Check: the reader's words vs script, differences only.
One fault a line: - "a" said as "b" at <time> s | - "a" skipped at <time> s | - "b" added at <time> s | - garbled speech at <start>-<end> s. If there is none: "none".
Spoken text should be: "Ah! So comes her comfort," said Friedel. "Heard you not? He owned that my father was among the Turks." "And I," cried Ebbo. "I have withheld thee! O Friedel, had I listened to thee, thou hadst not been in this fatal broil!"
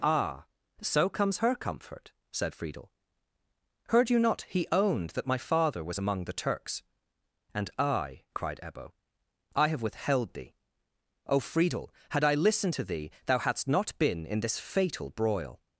none